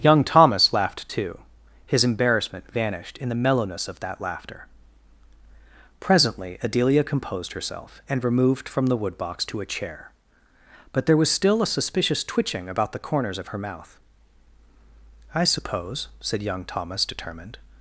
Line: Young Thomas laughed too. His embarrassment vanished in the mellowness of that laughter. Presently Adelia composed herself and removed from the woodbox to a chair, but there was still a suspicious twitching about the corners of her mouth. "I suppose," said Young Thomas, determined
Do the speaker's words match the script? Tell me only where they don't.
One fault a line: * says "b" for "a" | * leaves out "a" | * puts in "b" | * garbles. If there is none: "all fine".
all fine